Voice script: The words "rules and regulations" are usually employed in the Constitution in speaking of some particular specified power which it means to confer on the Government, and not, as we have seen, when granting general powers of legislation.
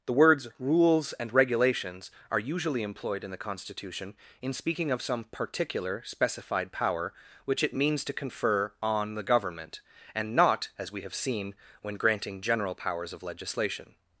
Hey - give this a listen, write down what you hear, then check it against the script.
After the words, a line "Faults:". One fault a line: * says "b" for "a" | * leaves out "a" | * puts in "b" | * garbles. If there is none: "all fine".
The words "rules and regulations" are usually employed in the Constitution in speaking of some particular specified power which it means to confer on the Government, and not, as we have seen, when granting general powers of legislation.
Faults:
all fine